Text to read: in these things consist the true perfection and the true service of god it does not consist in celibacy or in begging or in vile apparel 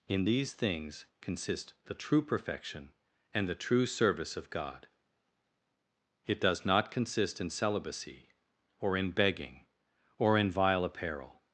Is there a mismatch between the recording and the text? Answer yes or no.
no